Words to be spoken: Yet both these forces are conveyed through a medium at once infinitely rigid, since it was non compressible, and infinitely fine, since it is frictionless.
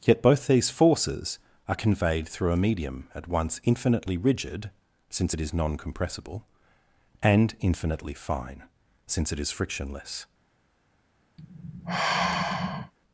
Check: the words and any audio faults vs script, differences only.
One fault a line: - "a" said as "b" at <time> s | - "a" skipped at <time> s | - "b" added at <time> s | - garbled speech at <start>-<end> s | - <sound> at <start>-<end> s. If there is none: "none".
- "was" said as "is" at 5.4 s
- sigh at 11.4-12.9 s